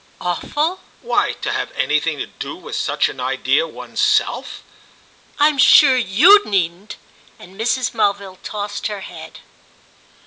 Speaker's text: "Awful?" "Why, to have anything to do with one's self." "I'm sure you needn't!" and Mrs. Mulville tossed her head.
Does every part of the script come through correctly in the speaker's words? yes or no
no